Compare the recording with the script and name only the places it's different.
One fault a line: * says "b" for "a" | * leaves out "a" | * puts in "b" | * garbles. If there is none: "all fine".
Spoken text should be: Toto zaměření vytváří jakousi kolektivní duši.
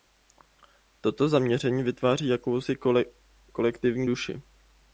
all fine